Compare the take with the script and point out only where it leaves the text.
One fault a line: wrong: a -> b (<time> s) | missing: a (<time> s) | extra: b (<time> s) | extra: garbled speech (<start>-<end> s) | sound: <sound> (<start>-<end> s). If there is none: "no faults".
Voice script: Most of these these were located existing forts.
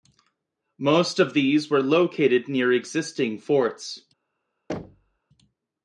missing: these (1.7 s)
extra: near (2.5 s)
sound: thud (4.7-5.2 s)